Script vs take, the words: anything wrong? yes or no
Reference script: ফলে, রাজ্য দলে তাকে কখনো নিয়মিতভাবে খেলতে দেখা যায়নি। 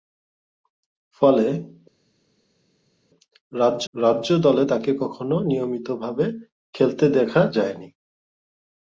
yes